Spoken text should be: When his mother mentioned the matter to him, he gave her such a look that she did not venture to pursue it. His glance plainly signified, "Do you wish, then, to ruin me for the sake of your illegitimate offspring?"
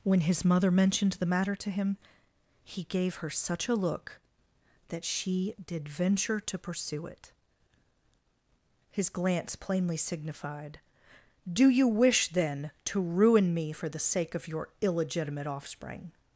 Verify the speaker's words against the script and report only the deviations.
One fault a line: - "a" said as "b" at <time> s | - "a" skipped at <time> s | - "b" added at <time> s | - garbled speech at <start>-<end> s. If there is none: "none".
- "not" skipped at 5.9 s